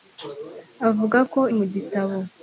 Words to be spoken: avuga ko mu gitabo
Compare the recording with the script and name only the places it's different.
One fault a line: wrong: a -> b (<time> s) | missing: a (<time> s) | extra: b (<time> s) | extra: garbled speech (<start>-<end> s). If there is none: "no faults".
no faults